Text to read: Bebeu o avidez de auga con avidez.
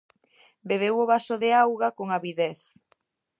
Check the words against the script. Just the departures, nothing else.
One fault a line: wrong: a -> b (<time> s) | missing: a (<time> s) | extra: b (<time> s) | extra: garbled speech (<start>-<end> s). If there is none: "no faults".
wrong: avidez -> vaso (1.1 s)